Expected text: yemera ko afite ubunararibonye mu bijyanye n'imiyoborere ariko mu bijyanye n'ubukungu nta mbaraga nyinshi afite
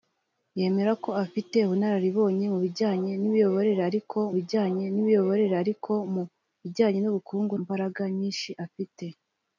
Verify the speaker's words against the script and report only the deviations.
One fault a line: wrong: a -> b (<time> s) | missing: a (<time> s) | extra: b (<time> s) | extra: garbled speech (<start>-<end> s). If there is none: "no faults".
extra: bijyanye n'imiyoborere ariko (4.4 s)
missing: nta (7.5 s)